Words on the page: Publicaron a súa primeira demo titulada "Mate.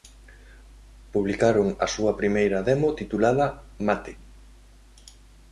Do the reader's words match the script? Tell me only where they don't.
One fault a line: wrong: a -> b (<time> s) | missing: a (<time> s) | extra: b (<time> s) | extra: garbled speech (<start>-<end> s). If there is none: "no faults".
no faults